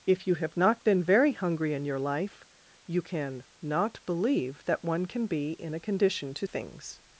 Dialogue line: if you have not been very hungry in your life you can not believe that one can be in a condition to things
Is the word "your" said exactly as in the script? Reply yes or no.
yes